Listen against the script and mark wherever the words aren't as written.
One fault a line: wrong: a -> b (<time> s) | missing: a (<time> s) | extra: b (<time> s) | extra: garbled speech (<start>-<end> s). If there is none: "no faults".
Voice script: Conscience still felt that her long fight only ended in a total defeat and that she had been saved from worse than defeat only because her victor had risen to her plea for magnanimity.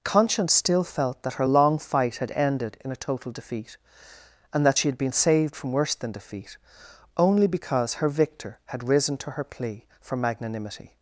wrong: only -> had (2.2 s)